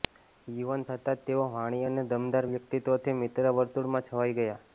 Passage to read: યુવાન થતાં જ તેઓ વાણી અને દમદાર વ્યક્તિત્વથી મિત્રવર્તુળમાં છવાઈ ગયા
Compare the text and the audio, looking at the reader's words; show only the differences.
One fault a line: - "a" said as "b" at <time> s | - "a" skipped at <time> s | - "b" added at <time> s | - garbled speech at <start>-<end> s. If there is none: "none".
none